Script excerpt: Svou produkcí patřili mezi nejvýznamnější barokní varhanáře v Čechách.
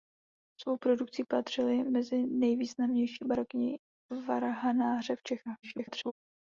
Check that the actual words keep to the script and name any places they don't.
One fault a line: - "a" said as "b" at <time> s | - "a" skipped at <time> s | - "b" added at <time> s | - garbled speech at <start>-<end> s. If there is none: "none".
- garbled speech at 5.6-6.1 s